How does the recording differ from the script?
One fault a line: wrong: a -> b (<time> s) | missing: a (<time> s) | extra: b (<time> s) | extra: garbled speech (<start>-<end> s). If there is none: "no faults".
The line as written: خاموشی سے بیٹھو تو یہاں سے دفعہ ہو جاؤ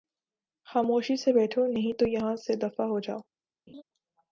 extra: نہیں (1.7 s)